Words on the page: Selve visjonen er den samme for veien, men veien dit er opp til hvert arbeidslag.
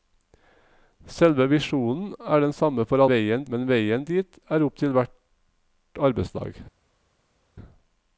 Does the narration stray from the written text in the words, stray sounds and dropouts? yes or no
no